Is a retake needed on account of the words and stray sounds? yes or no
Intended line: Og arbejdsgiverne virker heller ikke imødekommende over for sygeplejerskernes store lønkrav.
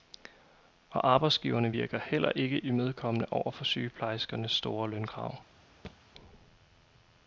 yes